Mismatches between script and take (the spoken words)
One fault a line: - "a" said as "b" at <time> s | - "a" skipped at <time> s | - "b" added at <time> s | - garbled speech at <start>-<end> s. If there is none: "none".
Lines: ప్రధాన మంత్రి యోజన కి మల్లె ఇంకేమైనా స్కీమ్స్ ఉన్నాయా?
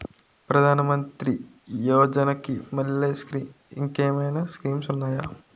none